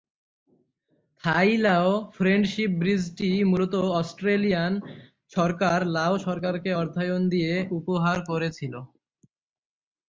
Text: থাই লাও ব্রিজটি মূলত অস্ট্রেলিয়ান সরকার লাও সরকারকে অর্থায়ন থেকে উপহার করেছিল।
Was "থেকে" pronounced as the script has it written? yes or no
no